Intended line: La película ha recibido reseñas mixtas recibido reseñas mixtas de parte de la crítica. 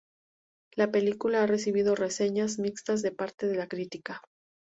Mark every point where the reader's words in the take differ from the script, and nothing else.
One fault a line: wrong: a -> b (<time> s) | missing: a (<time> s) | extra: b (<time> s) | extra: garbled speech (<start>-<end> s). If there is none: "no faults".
missing: recibido reseñas mixtas (3.0 s)